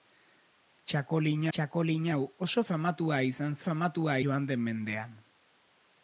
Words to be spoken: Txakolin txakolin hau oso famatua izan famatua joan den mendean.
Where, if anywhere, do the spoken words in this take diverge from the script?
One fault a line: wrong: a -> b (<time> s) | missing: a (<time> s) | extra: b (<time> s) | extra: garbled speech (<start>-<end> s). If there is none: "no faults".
no faults